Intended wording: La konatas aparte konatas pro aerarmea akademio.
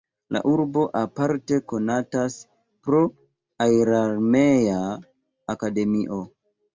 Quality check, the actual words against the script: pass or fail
fail